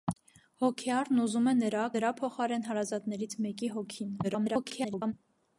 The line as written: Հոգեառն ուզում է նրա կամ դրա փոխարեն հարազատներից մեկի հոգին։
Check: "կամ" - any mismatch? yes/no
yes